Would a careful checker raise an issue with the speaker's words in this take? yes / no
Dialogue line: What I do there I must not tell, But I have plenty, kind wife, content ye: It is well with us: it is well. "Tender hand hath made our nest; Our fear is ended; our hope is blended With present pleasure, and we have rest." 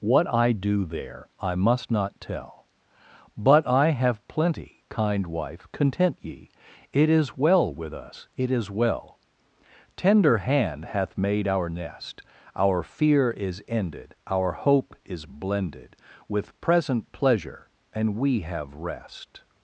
no